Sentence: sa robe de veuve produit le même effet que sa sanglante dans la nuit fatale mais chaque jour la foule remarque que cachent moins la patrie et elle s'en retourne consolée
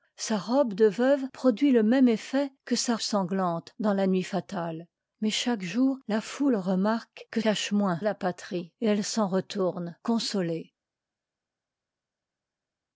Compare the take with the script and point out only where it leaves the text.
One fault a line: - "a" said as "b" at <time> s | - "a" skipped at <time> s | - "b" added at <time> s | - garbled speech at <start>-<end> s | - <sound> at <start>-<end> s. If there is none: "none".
none